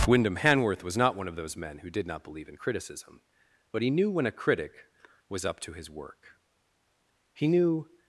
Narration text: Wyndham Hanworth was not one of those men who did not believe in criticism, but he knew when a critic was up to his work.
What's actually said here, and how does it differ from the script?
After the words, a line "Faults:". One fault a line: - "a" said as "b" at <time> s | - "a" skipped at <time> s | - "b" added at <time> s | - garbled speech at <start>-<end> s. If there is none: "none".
Wyndham Hanworth was not one of those men who did not believe in criticism, but he knew when a critic was up to his work. He knew
Faults:
- "He knew" added at 7.3 s